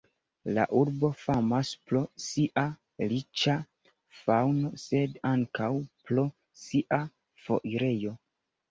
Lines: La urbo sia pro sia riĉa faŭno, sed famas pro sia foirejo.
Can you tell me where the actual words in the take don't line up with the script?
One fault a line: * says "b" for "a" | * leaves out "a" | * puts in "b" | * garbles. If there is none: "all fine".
* says "famas" for "sia"
* says "ankaŭ" for "famas"